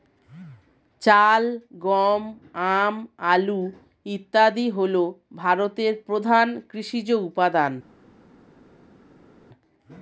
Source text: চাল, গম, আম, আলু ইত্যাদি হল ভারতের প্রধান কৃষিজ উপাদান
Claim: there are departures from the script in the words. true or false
false